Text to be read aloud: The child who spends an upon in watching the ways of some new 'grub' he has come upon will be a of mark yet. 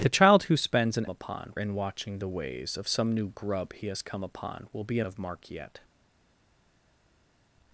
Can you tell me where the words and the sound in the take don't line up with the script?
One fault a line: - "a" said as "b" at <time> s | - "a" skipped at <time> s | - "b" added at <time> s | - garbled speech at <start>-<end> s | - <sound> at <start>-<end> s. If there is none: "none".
none